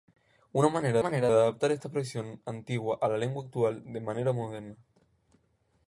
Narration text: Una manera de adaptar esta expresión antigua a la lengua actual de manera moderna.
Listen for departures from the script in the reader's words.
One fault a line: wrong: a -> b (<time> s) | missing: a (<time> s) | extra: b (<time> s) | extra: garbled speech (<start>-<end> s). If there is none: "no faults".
extra: manera (1.0 s)